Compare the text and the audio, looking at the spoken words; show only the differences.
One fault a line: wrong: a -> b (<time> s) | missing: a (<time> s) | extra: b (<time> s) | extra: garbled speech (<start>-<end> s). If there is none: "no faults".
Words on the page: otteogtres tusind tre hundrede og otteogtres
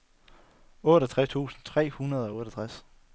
no faults